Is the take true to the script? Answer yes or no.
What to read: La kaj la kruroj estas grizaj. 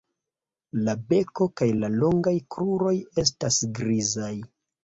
no